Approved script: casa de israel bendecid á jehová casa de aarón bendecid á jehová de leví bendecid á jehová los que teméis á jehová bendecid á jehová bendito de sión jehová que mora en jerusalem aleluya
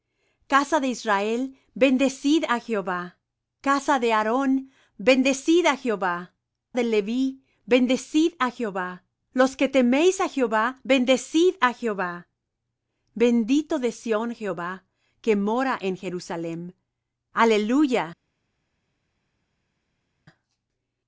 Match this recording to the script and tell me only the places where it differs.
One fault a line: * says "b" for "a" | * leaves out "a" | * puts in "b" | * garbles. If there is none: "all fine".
all fine